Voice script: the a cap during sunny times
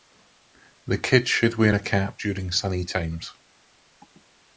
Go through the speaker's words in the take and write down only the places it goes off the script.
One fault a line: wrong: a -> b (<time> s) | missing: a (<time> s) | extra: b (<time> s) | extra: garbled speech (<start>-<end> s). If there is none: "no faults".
extra: kids should wear (1.0 s)